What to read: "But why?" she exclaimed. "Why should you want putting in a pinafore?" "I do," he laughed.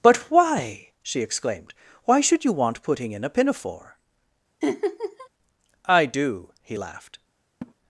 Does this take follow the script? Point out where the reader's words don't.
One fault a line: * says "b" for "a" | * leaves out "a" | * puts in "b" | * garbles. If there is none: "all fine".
all fine